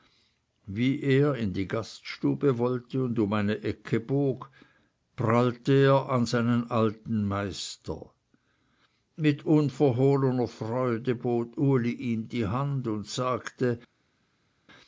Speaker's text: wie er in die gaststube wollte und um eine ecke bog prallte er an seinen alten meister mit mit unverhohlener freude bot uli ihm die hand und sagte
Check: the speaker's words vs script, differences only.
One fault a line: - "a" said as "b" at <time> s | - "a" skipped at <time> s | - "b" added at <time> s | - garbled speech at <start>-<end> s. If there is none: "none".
- "mit" skipped at 9.4 s